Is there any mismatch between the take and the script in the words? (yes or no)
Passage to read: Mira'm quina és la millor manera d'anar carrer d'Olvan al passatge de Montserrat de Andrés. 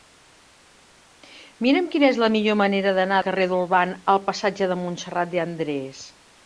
no